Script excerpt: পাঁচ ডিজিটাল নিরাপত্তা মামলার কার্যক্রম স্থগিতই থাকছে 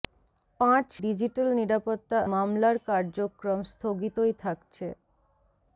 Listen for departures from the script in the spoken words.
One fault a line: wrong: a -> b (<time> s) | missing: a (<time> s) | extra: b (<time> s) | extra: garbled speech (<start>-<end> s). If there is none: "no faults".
no faults